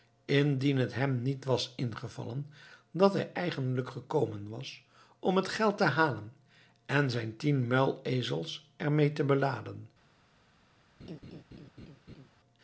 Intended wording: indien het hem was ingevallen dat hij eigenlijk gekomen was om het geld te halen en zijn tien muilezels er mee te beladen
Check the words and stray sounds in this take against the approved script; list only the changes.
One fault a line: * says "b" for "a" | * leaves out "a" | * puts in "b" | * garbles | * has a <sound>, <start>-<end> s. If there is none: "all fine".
* puts in "niet"
* has a laugh, 11.0-12.3 s